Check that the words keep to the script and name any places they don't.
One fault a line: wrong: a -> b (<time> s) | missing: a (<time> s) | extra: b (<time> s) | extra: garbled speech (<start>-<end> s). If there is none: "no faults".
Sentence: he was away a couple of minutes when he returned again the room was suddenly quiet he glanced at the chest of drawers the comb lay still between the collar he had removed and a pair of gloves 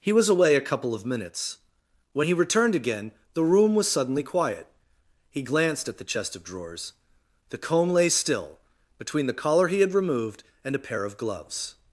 no faults